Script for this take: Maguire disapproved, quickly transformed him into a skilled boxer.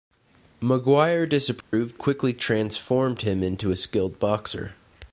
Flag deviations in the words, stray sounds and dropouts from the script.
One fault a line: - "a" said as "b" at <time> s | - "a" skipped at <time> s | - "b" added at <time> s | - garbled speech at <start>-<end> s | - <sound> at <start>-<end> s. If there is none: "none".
- dropout at 1.6-1.7 s